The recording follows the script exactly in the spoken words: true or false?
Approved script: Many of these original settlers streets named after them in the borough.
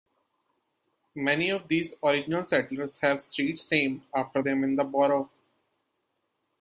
false